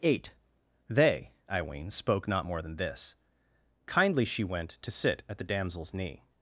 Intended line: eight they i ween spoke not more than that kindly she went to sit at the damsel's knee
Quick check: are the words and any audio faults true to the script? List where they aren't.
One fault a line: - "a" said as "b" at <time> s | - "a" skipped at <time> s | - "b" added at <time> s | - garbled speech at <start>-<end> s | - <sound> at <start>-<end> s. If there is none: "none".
- "that" said as "this" at 2.8 s